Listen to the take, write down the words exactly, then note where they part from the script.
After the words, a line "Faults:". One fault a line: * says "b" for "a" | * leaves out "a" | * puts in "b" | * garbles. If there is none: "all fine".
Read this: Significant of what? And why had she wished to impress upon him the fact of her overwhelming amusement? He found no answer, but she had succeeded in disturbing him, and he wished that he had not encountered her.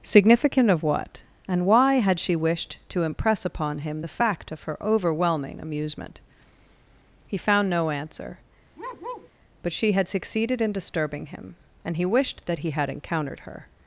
Significant of what? And why had she wished to impress upon him the fact of her overwhelming amusement? He found no answer, but she had succeeded in disturbing him, and he wished that he had encountered her.
Faults:
* leaves out "not"